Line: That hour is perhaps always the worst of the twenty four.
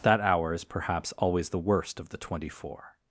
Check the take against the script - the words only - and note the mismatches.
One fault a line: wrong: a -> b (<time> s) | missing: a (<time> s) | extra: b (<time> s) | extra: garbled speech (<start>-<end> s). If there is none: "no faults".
no faults